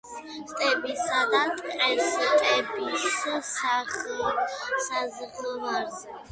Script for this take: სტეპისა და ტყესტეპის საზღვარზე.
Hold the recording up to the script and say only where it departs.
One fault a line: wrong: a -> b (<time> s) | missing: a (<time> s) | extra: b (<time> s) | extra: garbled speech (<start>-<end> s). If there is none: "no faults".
no faults